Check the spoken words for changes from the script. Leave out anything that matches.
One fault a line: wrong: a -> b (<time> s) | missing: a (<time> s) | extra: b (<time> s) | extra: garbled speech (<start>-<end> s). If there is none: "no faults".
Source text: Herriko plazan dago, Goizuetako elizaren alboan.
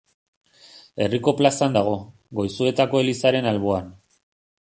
no faults